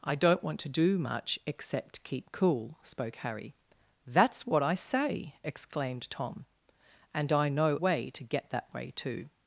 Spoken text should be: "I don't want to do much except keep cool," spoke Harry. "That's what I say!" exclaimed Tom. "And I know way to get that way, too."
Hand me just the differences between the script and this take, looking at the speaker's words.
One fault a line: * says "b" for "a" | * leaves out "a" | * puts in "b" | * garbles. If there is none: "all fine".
all fine